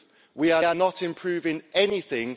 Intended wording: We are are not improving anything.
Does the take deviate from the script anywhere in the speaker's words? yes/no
no